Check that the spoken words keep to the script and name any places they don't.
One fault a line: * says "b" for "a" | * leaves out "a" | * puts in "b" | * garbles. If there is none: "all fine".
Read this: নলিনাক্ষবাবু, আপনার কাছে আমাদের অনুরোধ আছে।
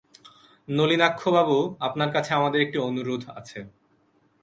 * puts in "একটি"